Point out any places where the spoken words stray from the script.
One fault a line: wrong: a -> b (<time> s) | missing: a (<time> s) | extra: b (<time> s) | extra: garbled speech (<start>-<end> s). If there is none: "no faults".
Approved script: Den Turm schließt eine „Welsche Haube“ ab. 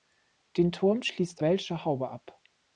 missing: eine (1.4 s)